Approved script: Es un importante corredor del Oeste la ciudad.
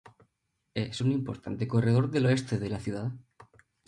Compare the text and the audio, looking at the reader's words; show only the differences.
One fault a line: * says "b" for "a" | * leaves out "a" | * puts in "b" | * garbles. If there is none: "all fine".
* puts in "de"